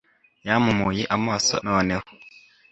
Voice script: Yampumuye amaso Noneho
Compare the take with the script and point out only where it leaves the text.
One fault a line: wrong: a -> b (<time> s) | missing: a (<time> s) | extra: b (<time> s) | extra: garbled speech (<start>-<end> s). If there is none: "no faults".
no faults